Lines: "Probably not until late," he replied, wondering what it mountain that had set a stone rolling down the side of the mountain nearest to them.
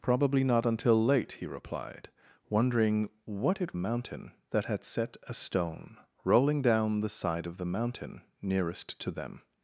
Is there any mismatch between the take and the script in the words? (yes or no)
no